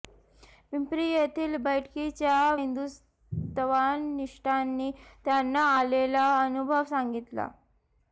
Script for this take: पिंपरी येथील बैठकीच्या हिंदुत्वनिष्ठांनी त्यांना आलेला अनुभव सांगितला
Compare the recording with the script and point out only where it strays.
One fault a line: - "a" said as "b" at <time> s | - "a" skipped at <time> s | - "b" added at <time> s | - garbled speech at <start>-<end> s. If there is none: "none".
none